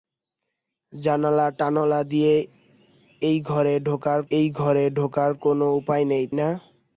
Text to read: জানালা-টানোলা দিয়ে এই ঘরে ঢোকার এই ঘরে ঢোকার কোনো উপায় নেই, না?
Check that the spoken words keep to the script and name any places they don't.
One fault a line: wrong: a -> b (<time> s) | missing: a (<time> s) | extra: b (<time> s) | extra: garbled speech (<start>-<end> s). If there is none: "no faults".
no faults